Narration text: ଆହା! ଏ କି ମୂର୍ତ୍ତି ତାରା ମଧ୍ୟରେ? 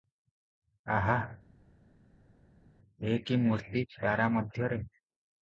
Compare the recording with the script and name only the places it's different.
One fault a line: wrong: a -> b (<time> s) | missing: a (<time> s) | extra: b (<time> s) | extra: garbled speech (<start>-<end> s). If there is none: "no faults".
no faults